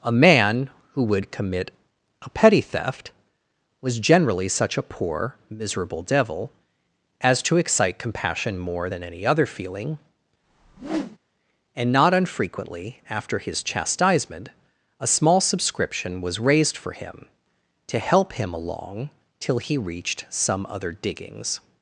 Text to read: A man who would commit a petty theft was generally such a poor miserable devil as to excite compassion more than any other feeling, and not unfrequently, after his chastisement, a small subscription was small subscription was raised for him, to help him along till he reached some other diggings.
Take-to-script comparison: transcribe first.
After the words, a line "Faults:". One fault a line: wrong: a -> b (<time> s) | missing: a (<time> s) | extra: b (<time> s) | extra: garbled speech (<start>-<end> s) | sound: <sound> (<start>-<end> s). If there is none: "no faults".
A man who would commit a petty theft was generally such a poor miserable devil as to excite compassion more than any other feeling, and not unfrequently, after his chastisement, a small subscription was raised for him, to help him along till he reached some other diggings.
Faults:
sound: whoosh (10.4-11.2 s)
missing: small subscription was (16.4 s)